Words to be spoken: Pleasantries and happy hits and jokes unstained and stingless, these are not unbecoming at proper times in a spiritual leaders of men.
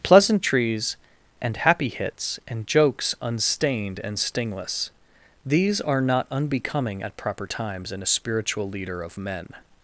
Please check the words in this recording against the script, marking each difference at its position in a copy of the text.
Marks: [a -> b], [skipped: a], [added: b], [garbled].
Pleasantries and happy hits and jokes unstained and stingless, these are not unbecoming at proper times in a spiritual [leaders -> leader] of men.